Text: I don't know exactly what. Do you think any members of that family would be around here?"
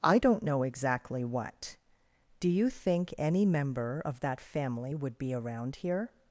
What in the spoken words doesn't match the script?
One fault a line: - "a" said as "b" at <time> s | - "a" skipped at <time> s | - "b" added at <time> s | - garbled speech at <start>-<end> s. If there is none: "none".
- "members" said as "member" at 3.5 s